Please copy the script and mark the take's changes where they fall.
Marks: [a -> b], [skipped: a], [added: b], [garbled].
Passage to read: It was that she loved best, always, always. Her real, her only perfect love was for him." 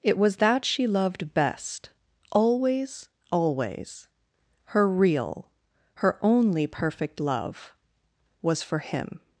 It was that she loved best, always, always. Her real, her only perfect love was for him."